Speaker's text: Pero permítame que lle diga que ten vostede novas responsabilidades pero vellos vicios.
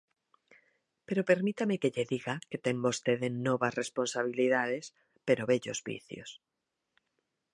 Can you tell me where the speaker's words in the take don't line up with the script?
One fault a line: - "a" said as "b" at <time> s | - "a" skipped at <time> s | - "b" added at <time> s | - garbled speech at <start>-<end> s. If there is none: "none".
none